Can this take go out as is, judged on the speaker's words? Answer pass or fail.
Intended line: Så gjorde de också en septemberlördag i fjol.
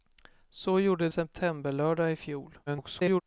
fail